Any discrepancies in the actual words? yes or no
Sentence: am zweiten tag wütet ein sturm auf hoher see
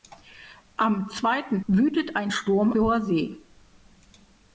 yes